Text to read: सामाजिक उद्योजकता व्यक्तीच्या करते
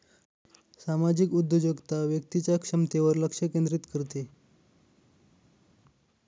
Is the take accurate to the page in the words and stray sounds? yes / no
no